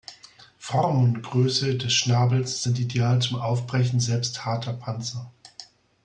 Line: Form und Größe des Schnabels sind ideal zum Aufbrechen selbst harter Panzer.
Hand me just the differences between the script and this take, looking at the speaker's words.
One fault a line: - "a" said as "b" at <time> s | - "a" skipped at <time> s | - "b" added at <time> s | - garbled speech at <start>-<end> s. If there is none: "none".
none